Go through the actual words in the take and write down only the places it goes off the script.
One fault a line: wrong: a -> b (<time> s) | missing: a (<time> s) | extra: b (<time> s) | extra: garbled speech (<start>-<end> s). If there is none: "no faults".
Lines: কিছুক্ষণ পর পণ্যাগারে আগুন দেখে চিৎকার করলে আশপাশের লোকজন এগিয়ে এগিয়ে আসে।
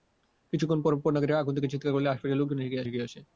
no faults